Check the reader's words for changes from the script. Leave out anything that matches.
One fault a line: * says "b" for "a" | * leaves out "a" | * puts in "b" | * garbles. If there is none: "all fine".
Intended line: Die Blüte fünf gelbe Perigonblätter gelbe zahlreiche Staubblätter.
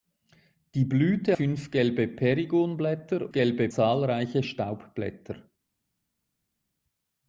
all fine